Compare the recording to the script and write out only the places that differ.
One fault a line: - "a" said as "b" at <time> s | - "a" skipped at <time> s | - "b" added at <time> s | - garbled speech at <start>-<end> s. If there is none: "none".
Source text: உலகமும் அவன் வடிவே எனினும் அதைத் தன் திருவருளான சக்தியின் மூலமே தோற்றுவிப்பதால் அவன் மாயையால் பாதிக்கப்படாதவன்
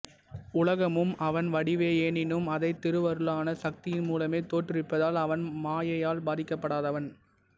- "தன்" skipped at 2.8 s